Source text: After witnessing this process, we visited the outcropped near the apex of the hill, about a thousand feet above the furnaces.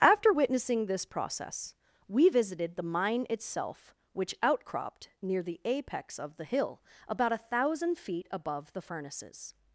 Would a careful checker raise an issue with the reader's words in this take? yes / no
yes